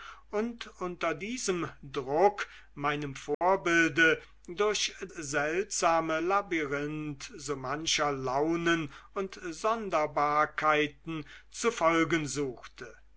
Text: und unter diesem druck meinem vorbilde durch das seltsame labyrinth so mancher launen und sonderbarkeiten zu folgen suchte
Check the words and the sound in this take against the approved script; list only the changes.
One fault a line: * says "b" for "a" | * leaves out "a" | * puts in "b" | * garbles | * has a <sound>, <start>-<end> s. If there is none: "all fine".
* has a dropout, 3.3-3.4 s
* leaves out "das"